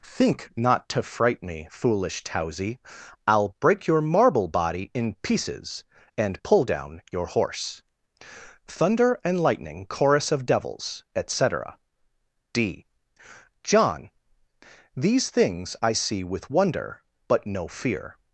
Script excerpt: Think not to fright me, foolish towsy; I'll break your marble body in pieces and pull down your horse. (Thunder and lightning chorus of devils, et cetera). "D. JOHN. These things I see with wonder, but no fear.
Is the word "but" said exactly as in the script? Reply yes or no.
yes